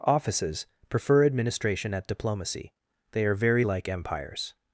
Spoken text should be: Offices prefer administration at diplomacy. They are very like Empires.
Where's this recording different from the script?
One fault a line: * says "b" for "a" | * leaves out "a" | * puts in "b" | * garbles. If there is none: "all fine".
all fine